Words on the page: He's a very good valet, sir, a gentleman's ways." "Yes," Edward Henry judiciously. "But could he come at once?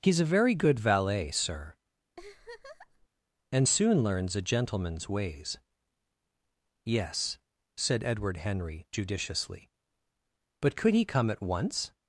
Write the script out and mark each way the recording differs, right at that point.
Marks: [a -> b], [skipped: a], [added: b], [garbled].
He's a very good valet, sir, [added: and soon learns] a gentleman's ways." "Yes," [added: said] Edward Henry judiciously. "But could he come at once?